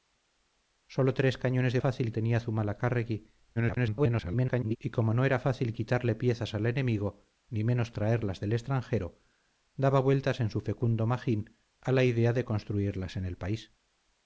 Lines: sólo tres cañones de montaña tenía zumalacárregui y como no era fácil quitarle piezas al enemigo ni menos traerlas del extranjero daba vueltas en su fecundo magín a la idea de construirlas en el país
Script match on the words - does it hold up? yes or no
no